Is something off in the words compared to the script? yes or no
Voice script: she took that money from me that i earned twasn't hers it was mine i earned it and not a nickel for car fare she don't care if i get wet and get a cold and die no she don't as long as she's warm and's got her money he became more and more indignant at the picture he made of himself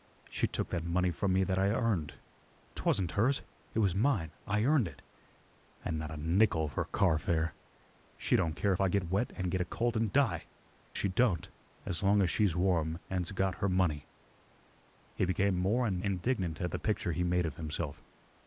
yes